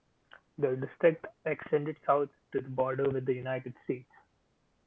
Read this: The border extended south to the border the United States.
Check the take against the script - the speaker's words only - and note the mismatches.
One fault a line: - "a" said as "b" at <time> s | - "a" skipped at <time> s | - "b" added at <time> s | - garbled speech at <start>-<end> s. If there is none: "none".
- "border" said as "district" at 0.8 s
- "with" added at 3.1 s